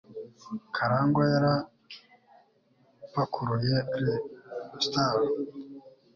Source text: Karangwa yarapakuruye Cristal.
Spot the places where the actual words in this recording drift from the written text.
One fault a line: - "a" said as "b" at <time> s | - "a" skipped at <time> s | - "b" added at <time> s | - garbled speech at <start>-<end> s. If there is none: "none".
none